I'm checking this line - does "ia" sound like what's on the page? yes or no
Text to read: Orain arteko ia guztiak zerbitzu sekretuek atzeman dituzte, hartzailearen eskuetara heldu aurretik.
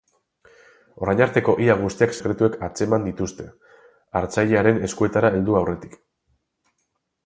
yes